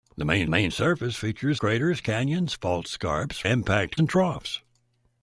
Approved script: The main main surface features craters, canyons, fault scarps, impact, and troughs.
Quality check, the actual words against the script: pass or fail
pass